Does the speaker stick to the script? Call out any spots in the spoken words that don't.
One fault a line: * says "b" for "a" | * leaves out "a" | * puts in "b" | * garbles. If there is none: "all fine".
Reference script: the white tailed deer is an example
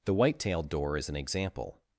* says "door" for "deer"